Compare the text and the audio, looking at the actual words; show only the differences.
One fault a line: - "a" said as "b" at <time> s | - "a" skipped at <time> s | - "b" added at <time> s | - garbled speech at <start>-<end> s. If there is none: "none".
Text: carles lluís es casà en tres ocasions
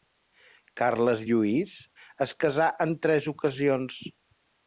none